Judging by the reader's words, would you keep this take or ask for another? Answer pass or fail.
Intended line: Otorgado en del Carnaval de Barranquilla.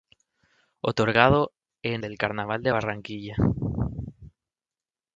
pass